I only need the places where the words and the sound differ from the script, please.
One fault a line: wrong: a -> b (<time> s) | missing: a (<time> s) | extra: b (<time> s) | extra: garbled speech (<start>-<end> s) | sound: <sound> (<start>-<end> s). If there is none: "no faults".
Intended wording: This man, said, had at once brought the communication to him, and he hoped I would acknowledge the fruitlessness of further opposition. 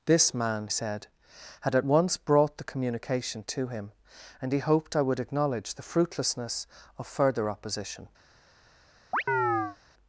sound: chirp (9.1-9.8 s)